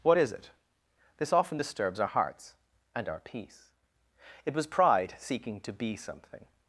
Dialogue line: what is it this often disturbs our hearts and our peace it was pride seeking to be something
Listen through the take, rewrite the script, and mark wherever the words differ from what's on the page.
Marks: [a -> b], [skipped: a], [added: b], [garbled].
what is it this often disturbs our hearts and our peace it was pride seeking to be something